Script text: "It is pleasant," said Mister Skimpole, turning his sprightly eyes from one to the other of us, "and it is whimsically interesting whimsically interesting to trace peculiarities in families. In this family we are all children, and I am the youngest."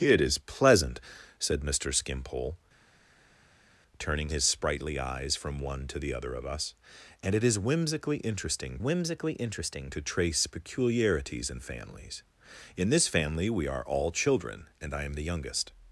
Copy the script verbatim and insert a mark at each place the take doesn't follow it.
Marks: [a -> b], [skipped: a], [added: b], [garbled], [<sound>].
"It is pleasant," said Mister Skimpole, turning his sprightly eyes from one to the other of us, "and it is whimsically interesting whimsically interesting to trace peculiarities in families. In this family we are all children, and I am the youngest."